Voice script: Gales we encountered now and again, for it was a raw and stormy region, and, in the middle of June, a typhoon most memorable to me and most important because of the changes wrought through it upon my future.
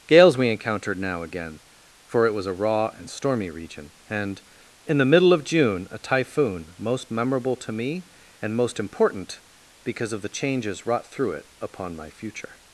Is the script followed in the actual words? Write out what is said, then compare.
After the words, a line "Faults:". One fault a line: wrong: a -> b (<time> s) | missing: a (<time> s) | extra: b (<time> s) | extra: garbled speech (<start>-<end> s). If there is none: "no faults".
Gales we encountered now again, for it was a raw and stormy region, and, in the middle of June, a typhoon most memorable to me and most important because of the changes wrought through it upon my future.
Faults:
missing: and (1.2 s)